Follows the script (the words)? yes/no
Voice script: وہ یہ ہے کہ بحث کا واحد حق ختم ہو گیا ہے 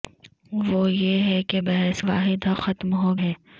no